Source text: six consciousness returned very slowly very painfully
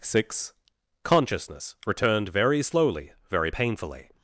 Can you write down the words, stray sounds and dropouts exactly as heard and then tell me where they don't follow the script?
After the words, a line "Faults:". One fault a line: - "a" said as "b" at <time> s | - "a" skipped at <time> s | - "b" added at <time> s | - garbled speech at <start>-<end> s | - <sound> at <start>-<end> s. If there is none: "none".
six consciousness returned very slowly very painfully
Faults:
none